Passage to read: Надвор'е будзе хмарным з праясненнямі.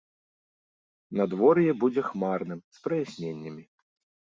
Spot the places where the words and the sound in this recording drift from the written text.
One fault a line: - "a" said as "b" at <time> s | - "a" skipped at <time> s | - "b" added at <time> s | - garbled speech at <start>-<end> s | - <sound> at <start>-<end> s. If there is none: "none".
none